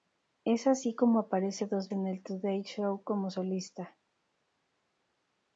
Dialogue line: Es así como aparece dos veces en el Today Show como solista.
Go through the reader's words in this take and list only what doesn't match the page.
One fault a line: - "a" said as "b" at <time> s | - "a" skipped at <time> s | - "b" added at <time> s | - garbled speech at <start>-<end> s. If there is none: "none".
- "veces" skipped at 1.9 s